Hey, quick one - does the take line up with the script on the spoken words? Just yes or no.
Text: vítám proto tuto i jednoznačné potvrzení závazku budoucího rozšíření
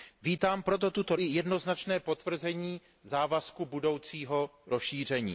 yes